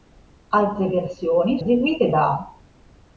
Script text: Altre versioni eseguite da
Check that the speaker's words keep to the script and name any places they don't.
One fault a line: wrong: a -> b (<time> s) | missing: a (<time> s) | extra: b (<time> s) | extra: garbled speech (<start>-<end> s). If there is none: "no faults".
no faults